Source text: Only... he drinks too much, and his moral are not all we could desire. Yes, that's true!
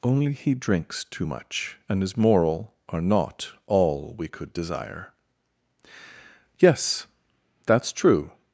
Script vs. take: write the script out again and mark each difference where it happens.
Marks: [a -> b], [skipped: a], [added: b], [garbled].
Only... he drinks too much, and his moral are not all we could desire. Yes, that's true!